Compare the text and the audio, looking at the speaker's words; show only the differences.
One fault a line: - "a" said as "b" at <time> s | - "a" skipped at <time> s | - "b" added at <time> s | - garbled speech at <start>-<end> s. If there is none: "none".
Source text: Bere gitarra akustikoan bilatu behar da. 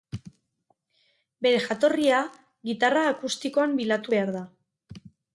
- "jatorria" added at 1.6 s